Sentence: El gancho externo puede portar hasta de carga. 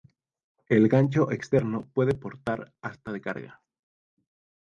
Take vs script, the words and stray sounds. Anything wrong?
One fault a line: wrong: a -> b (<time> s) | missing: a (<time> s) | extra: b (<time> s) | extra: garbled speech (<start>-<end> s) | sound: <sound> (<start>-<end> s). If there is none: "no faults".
no faults